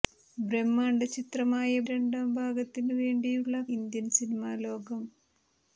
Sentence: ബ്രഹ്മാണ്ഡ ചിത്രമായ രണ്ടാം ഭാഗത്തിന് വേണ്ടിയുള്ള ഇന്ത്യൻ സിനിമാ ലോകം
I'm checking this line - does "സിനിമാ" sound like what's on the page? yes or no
yes